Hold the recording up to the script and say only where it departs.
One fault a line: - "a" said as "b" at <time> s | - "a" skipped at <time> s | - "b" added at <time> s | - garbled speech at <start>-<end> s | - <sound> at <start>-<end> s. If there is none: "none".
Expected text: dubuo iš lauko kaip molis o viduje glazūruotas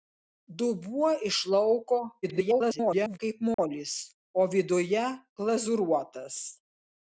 - garbled speech at 2.2-3.2 s
- dropout at 3.5-3.6 s